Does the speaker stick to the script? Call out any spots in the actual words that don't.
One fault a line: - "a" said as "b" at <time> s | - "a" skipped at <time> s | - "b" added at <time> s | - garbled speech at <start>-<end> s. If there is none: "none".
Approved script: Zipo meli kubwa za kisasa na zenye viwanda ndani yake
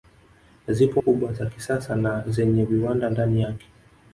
- "meli" skipped at 1.0 s